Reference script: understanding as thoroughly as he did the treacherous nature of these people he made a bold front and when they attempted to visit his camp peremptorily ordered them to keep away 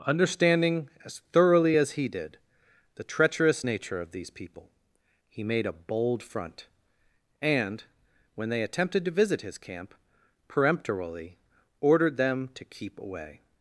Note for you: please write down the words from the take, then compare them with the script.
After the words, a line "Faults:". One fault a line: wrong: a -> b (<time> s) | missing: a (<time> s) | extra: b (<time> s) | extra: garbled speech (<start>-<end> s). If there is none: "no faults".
understanding as thoroughly as he did the treacherous nature of these people he made a bold front and when they attempted to visit his camp peremptorily ordered them to keep away
Faults:
no faults